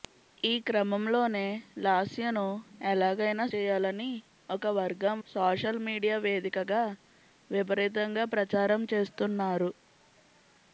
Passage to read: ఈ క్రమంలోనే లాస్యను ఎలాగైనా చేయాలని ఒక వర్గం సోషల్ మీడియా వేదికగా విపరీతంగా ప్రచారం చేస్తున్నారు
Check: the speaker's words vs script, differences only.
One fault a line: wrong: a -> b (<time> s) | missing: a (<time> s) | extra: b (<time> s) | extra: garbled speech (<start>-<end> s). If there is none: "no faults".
no faults